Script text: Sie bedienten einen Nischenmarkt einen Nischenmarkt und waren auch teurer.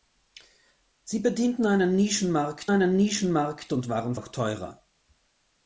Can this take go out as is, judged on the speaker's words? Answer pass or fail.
pass